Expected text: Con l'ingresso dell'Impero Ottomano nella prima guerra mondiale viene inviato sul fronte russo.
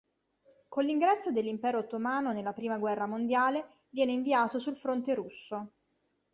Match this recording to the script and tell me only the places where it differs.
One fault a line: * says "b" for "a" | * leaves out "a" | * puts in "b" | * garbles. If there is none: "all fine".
all fine